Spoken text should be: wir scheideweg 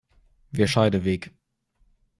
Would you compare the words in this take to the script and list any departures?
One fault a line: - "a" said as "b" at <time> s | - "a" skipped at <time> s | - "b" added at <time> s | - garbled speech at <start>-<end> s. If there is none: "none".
none